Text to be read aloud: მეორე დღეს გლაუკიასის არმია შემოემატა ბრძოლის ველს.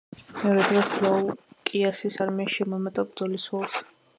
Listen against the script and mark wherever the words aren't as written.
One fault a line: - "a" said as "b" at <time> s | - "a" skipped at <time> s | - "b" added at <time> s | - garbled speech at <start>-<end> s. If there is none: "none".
none